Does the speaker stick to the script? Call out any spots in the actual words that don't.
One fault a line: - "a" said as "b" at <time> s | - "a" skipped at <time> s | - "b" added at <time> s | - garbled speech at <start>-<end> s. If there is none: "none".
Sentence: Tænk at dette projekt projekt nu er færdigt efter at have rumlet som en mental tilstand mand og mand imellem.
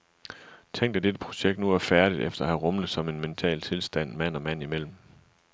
- "projekt" skipped at 1.6 s